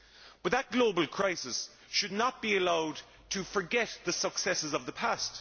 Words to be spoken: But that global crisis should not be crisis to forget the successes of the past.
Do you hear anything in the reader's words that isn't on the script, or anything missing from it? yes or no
yes